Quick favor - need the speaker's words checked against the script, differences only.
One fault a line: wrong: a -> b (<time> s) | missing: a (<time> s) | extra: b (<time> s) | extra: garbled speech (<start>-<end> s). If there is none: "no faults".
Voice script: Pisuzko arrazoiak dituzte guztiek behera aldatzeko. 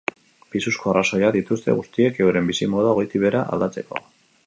extra: euren bizimodua goitik (2.3 s)